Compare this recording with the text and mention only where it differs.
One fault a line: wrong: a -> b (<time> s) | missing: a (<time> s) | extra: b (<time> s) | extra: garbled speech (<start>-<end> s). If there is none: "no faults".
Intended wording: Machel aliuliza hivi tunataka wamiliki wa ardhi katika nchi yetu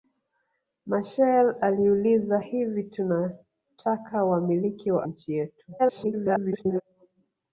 missing: ardhi katika (5.1 s)
extra: garbled speech (5.8-6.8 s)